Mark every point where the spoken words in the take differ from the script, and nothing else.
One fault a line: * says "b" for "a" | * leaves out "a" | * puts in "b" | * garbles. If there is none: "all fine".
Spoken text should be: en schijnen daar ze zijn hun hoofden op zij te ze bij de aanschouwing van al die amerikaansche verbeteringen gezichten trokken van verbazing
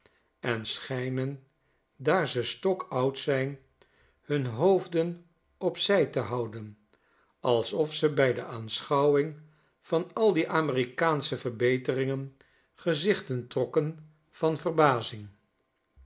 * puts in "stokoud"
* puts in "houden alsof"